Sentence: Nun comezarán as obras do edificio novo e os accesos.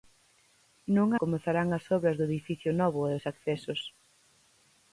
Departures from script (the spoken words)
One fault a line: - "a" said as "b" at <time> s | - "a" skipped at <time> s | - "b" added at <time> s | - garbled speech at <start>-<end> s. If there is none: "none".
none